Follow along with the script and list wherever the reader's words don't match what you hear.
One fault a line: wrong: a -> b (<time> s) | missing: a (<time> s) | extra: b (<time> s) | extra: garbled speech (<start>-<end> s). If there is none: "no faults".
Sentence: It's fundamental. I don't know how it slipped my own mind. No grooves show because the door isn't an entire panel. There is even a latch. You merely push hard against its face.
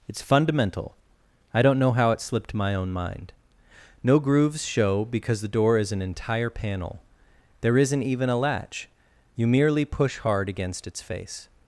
wrong: isn't -> is (5.8 s)
wrong: is -> isn't (7.8 s)